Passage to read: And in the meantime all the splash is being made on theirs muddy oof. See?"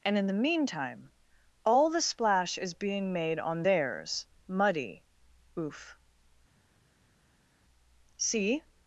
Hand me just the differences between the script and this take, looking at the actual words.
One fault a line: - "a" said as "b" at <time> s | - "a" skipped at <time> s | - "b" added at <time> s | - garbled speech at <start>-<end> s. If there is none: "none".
none